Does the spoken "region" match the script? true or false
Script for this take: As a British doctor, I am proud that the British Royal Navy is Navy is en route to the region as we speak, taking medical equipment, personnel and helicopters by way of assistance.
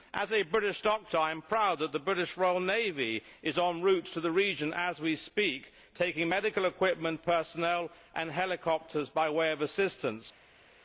true